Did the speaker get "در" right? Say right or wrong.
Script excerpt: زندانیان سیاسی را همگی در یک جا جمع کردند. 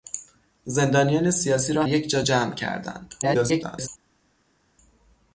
wrong